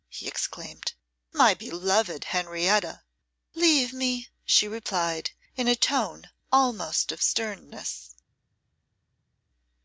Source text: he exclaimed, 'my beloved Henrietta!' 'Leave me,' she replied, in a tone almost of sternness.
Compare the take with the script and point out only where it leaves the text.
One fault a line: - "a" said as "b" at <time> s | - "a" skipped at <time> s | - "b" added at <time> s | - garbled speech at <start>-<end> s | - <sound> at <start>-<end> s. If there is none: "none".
none